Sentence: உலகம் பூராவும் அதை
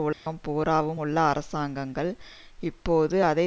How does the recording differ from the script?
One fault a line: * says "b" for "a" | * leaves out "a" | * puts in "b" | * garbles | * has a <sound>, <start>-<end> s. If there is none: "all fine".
* has a dropout, 0.1-0.3 s
* puts in "உள்ள அரசாங்கங்கள் இப்போது"